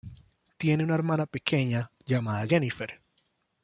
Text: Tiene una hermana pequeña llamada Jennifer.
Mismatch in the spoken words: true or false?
false